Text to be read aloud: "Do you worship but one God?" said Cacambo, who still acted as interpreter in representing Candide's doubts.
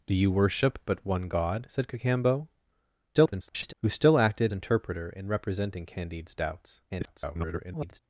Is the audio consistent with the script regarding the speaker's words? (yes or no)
no